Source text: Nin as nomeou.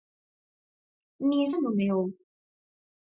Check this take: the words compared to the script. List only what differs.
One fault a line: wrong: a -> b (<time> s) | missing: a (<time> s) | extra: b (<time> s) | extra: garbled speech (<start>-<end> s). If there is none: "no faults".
no faults